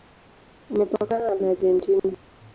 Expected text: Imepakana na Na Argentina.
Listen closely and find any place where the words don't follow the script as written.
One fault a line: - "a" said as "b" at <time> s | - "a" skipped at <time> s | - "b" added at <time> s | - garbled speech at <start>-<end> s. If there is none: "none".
none